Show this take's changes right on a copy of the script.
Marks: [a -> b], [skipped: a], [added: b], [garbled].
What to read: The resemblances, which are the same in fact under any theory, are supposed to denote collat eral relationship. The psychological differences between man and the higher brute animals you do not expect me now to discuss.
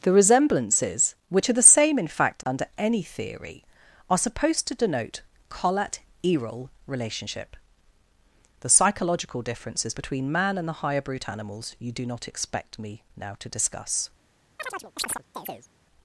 The resemblances, which are the same in fact under any theory, are supposed to denote collat eral relationship. The psychological differences between man and the higher brute animals you do not expect me now to discuss.